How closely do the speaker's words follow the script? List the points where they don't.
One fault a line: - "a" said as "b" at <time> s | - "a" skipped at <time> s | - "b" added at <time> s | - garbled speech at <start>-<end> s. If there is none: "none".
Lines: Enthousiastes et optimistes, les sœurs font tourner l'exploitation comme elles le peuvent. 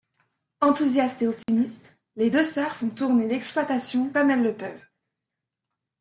- "deux" added at 2.3 s